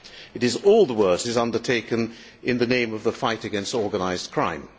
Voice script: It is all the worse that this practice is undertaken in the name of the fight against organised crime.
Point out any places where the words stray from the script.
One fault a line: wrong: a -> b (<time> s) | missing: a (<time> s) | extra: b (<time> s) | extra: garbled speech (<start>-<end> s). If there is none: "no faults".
missing: that this practice (1.2 s)